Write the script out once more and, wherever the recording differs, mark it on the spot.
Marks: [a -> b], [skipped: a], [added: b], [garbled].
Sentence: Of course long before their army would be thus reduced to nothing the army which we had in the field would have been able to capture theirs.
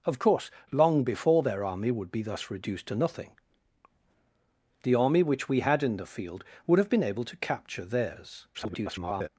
Of course long before their army would be thus reduced to nothing the army which we had in the field would have been able to capture theirs. [garbled]